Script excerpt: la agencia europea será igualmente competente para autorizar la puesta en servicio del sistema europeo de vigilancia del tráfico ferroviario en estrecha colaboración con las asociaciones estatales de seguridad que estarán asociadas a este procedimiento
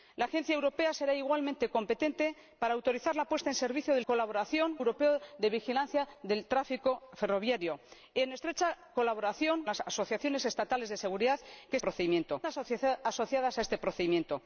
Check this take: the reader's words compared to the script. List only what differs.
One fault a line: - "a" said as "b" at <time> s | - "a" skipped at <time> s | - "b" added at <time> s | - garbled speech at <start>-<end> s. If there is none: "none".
- "sistema" said as "colaboración" at 4.1 s
- "con" skipped at 9.6 s
- "estarán" said as "procedimiento" at 11.8 s